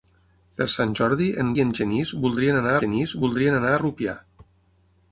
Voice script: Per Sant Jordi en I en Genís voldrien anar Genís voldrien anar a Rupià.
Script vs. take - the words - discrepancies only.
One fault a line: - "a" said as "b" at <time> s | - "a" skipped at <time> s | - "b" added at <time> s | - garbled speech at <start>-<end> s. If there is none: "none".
none